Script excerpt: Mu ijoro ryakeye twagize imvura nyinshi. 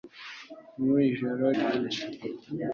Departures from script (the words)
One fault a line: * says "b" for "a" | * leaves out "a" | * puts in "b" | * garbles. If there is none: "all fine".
* leaves out "ryakeye twagize imvura"